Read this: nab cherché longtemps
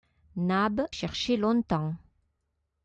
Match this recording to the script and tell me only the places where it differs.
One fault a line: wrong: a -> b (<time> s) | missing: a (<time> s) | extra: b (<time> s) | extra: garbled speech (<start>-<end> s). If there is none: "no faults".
no faults